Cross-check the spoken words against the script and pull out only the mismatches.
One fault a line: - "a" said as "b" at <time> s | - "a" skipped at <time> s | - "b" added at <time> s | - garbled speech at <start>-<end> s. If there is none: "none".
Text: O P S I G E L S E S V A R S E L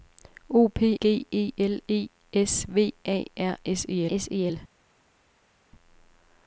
- "S I" skipped at 1.0 s
- "S" skipped at 1.8 s
- "S E" added at 4.1 s